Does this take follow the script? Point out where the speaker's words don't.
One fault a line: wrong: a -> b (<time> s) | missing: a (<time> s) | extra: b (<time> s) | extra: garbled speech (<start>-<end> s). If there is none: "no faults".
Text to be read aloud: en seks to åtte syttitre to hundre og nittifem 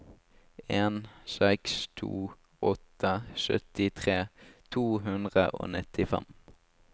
no faults